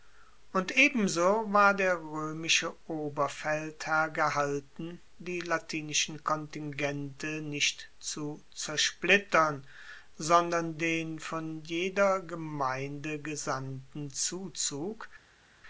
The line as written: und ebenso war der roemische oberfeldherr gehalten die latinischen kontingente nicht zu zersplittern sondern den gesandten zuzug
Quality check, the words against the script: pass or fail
fail